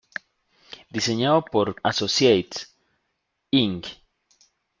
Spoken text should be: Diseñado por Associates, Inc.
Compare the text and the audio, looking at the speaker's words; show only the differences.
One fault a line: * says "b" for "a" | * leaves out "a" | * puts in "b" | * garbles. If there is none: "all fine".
all fine